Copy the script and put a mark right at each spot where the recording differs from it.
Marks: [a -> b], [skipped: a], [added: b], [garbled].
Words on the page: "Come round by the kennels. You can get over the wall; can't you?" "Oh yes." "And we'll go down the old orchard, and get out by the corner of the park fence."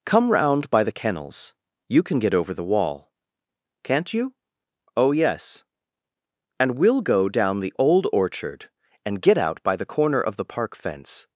"Come round by the kennels. You can get over the wall; can't you?" "Oh yes." "And we'll go down the old orchard, and get out by the corner of the park fence."